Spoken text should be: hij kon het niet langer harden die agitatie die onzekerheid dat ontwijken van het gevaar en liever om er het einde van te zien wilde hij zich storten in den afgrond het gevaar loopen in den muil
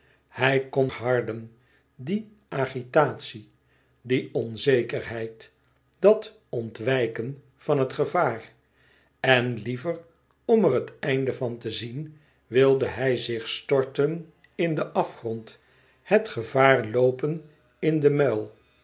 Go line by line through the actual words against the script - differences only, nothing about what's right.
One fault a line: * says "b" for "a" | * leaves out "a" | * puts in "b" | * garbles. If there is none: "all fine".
* leaves out "het niet langer"